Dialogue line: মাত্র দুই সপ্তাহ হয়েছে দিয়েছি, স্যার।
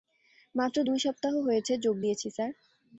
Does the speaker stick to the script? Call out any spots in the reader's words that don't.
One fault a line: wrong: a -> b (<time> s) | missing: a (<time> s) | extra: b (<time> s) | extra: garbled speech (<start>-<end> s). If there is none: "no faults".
extra: যোগ (1.8 s)